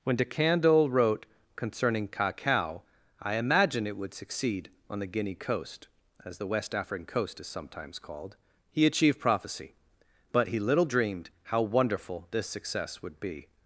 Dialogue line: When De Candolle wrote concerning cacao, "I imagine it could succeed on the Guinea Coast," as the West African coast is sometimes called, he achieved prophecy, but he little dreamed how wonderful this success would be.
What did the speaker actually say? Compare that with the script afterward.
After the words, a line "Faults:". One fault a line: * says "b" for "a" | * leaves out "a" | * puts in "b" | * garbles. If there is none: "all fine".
When De Candolle wrote concerning cacao, "I imagine it would succeed on the Guinea Coast," as the West African coast is sometimes called, he achieved prophecy, but he little dreamed how wonderful this success would be.
Faults:
* says "would" for "could"